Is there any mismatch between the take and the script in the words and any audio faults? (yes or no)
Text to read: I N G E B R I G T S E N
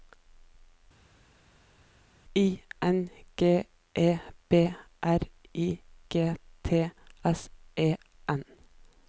no